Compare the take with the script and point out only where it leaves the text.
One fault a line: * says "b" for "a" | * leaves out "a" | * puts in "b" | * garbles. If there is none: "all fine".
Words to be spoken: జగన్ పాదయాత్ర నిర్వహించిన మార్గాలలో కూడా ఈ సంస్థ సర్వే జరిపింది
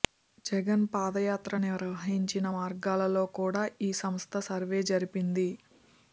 all fine